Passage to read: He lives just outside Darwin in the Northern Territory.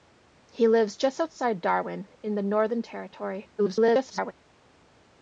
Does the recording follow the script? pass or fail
fail